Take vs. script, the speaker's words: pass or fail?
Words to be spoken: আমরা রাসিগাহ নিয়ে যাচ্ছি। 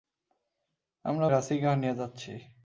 pass